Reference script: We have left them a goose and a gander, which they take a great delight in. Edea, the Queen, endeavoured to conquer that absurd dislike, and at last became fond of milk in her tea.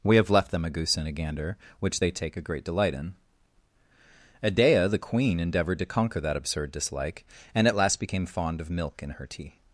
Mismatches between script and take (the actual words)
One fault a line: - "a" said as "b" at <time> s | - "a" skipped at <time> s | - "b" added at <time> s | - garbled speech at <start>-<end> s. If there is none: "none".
none